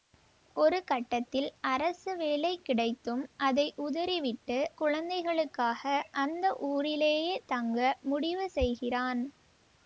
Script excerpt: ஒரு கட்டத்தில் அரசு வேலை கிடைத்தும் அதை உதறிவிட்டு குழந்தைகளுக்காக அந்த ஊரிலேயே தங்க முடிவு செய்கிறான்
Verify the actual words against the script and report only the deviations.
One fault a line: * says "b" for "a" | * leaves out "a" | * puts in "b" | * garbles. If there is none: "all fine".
all fine